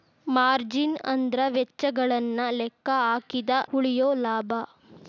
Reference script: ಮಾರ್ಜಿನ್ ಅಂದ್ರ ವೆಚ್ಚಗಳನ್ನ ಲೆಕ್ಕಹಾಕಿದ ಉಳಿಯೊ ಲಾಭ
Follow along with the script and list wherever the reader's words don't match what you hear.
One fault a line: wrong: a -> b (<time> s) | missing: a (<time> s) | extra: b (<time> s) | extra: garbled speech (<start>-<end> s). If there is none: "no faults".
no faults